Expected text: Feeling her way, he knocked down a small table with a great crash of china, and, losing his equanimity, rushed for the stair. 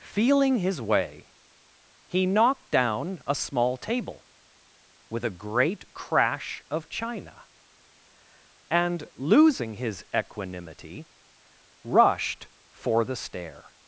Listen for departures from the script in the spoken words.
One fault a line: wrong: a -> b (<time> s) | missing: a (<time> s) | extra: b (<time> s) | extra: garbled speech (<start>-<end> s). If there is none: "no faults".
wrong: her -> his (0.6 s)